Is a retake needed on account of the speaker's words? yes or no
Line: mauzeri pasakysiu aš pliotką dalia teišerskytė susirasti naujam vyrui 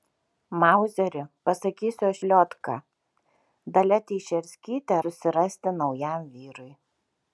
no